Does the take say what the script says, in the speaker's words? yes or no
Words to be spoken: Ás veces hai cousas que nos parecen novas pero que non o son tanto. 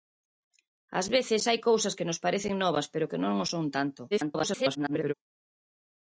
no